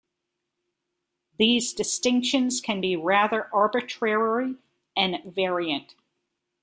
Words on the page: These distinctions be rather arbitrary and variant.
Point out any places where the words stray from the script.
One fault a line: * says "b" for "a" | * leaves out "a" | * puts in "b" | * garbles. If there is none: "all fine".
* puts in "can"